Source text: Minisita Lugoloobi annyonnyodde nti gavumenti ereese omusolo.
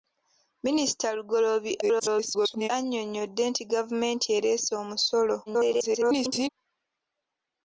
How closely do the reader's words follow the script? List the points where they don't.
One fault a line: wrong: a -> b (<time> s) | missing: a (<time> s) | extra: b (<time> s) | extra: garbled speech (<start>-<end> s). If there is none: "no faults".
extra: garbled speech (1.8-2.7 s)
extra: garbled speech (5.5-6.5 s)